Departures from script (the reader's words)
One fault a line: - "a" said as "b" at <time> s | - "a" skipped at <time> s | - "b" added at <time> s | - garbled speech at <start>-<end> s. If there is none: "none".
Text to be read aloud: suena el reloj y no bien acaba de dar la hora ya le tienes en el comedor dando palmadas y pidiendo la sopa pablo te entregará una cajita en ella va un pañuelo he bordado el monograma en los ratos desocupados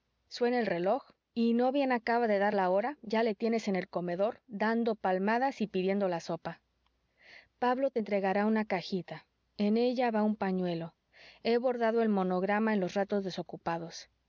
none